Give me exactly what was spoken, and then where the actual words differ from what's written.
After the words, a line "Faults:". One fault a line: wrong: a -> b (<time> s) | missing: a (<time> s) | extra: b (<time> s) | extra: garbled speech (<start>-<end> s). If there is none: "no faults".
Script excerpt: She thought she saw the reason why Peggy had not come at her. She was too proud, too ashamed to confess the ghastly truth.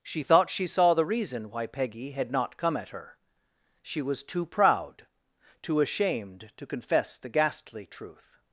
She thought she saw the reason why Peggy had not come at her. She was too proud, too ashamed to confess the ghastly truth.
Faults:
no faults